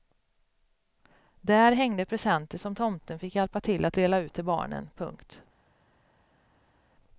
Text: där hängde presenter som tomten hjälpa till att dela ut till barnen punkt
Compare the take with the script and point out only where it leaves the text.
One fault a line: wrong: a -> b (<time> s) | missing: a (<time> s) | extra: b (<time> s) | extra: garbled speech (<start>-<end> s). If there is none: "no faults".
extra: fick (3.2 s)